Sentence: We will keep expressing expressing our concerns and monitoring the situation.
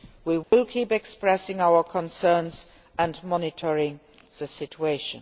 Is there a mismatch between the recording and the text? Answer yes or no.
yes